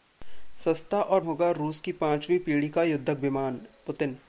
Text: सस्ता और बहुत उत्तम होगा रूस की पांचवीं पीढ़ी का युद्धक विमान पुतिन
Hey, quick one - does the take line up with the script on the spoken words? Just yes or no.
no